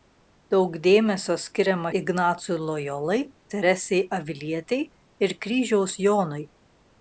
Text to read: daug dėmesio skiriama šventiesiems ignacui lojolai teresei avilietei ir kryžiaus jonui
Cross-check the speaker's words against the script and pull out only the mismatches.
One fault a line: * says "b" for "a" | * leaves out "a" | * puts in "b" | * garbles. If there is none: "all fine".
* leaves out "šventiesiems"